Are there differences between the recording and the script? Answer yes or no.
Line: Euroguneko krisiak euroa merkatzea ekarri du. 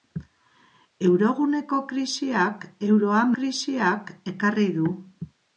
yes